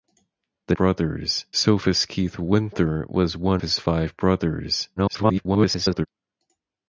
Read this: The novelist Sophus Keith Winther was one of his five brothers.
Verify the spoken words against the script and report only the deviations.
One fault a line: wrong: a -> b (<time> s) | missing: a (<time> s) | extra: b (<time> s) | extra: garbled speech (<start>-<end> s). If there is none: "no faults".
wrong: novelist -> brothers (0.7 s)
missing: of (3.6 s)
extra: garbled speech (5.0-6.1 s)